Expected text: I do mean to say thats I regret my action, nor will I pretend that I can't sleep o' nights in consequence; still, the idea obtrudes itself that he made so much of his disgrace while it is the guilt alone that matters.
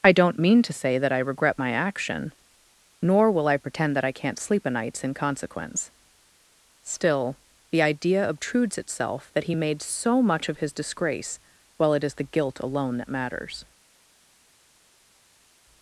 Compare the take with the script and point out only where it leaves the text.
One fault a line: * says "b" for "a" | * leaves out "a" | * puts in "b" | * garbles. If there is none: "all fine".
* says "don't" for "do"
* says "that" for "thats"